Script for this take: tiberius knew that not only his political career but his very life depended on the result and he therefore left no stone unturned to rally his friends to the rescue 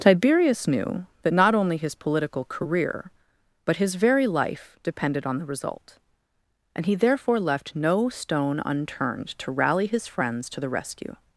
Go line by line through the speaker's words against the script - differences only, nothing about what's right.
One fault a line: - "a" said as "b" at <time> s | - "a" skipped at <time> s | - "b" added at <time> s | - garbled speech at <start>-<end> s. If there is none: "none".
none